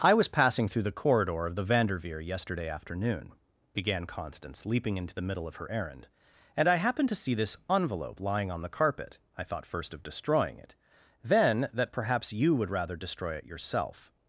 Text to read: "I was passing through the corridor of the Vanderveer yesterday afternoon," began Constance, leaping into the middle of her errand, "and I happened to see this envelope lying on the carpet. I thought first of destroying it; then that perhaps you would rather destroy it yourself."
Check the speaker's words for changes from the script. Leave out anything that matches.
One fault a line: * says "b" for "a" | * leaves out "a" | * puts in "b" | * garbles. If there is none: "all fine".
all fine